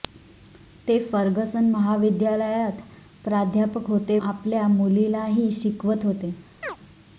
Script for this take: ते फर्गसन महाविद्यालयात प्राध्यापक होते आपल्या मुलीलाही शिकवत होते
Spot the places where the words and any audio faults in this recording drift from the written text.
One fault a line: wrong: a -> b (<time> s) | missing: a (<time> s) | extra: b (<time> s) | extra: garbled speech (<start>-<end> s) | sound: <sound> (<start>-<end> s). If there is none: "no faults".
sound: chirp (6.6-6.8 s)